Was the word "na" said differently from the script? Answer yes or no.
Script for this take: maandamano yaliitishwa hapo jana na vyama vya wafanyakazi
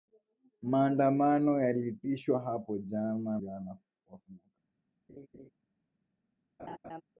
yes